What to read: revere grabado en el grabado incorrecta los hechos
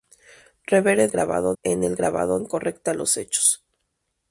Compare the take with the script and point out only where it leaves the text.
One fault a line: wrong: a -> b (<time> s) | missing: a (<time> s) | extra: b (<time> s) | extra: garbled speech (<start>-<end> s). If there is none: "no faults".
no faults